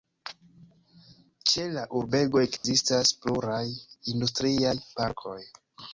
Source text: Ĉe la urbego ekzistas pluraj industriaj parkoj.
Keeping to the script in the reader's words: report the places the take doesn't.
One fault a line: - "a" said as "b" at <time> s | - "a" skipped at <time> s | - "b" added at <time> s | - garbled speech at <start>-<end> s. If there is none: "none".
none